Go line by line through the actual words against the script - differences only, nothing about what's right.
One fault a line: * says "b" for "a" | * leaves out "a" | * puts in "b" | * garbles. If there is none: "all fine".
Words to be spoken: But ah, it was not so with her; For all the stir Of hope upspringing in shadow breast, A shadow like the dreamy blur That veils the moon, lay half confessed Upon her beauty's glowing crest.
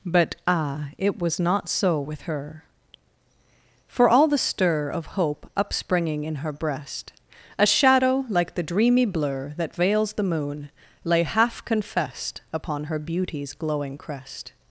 * says "her" for "shadow"